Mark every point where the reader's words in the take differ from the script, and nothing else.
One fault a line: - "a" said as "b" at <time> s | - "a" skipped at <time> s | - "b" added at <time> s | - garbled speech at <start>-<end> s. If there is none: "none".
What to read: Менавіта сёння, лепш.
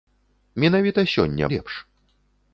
none